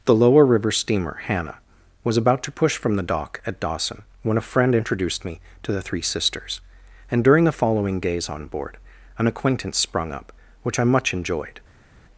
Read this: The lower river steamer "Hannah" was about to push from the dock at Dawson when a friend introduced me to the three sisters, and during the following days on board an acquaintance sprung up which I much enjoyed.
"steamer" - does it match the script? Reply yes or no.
yes